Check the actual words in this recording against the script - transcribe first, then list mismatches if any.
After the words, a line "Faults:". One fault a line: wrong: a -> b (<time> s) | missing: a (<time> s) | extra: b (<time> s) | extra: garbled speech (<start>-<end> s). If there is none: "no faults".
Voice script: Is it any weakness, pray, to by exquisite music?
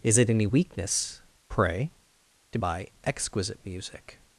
Is it any weakness, pray, to by exquisite music?
Faults:
no faults